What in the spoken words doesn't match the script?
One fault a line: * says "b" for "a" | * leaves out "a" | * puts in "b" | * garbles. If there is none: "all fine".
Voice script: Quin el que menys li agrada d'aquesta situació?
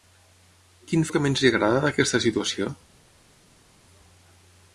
all fine